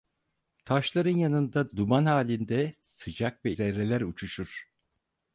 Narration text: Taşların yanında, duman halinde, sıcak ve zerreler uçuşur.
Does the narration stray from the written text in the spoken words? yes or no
no